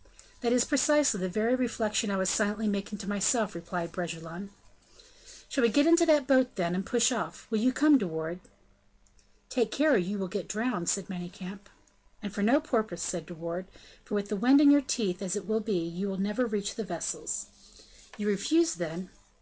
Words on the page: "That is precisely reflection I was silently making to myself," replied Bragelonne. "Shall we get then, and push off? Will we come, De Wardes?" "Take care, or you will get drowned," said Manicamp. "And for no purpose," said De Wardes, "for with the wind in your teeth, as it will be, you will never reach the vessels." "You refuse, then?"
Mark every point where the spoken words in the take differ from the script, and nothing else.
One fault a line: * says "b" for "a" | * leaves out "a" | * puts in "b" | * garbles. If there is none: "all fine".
* puts in "the very"
* puts in "into that boat"
* says "you" for "we"